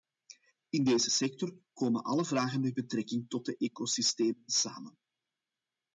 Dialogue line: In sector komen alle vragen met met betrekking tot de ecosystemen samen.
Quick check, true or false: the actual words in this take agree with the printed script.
false